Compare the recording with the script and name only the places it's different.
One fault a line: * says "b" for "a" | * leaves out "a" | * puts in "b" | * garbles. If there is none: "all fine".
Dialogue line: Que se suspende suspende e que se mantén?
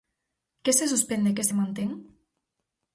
* leaves out "suspende"